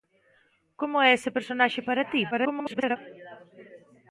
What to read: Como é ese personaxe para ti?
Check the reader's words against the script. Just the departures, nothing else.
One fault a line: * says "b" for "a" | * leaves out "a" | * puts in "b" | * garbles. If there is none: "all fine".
* garbles